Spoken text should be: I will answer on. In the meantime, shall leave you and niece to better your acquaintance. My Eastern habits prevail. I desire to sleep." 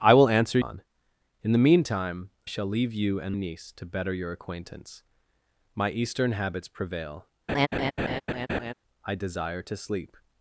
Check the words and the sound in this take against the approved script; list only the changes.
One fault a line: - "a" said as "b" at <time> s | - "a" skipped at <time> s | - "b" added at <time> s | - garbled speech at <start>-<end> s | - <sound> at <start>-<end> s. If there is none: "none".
- laugh at 7.5-8.7 s